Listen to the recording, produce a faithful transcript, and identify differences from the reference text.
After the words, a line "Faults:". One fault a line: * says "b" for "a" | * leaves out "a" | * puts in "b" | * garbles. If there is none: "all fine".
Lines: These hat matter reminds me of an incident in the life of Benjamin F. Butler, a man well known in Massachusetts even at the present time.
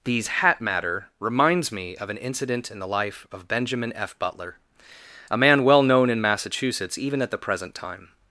These hat matter reminds me of an incident in the life of Benjamin F. Butler, a man well known in Massachusetts even at the present time.
Faults:
all fine